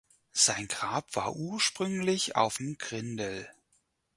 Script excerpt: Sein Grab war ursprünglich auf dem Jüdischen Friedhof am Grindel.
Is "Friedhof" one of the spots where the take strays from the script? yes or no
yes